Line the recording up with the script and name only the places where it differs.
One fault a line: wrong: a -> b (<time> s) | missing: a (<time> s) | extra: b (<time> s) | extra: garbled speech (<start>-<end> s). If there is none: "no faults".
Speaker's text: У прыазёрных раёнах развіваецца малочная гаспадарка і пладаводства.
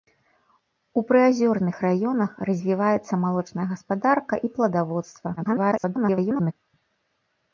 extra: garbled speech (5.4-6.5 s)